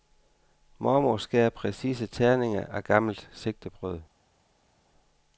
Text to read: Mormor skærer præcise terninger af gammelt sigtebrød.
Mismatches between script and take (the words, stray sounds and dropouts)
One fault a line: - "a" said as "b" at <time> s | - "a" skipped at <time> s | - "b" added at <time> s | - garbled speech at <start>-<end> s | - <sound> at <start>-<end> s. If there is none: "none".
none